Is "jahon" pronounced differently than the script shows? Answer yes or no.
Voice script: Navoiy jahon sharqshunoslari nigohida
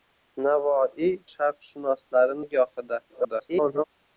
yes